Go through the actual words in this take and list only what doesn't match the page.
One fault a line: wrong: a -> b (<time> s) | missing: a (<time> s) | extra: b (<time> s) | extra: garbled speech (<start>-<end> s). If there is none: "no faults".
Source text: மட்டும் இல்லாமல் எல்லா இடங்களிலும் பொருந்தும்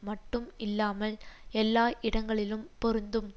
no faults